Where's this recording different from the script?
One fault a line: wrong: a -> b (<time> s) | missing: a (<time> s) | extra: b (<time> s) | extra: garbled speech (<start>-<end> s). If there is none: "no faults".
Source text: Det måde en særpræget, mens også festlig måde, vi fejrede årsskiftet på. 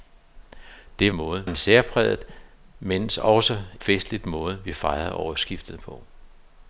no faults